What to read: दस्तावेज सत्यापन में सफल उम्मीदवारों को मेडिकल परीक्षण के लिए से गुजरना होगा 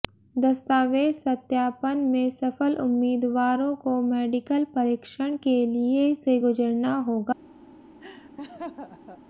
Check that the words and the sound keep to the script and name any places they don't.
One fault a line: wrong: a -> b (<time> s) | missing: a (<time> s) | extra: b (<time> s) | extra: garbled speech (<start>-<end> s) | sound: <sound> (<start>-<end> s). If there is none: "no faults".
sound: laugh (8.0-9.2 s)